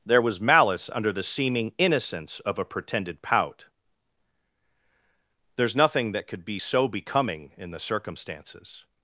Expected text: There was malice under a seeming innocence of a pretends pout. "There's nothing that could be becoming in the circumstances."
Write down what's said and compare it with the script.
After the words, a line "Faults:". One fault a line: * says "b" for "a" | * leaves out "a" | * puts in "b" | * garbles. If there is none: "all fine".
There was malice under the seeming innocence of a pretended pout. "There's nothing that could be so becoming in the circumstances."
Faults:
* says "the" for "a"
* says "pretended" for "pretends"
* puts in "so"